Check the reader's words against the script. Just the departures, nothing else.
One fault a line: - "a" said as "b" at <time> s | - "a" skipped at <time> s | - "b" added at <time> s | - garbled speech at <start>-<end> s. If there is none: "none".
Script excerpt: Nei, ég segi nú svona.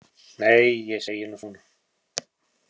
none